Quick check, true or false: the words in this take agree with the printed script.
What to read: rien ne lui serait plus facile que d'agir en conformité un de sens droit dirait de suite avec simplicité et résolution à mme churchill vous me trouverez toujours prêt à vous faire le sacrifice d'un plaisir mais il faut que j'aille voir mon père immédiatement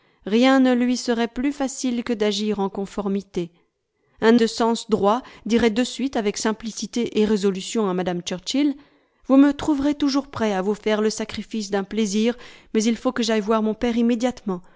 true